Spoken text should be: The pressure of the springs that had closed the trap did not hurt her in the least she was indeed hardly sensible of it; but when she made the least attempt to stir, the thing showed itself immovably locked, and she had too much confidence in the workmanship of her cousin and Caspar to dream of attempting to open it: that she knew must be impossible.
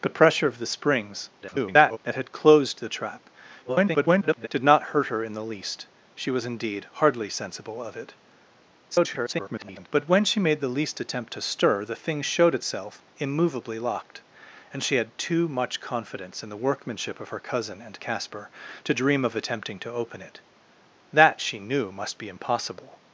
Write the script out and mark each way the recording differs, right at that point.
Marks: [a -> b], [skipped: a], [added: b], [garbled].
The pressure of the springs [garbled] that had closed the trap [garbled] did not hurt her in the least she was indeed hardly sensible of it; [garbled] but when she made the least attempt to stir, the thing showed itself immovably locked, and she had too much confidence in the workmanship of her cousin and Caspar to dream of attempting to open it: that she knew must be impossible.